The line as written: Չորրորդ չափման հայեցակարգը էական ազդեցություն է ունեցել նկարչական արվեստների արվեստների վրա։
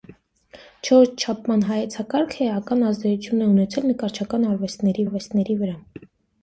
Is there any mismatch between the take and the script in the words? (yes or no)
no